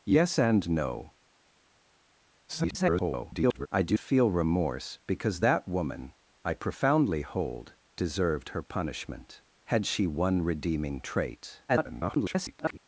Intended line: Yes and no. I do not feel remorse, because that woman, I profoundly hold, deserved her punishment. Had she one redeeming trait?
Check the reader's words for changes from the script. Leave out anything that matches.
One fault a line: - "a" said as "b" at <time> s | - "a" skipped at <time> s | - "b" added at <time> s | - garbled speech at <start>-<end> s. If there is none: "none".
- garbled speech at 2.5-3.7 s
- "not" skipped at 4.0 s
- garbled speech at 11.7-12.8 s